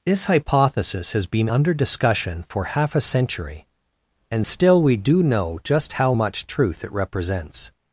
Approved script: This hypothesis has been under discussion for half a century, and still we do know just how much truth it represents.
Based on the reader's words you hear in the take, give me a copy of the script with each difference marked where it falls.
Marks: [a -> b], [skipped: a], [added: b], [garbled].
This hypothesis has been under discussion for half a century, and still we do know just how much truth it represents.